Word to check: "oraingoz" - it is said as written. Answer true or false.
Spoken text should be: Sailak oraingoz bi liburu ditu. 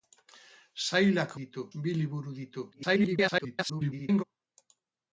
false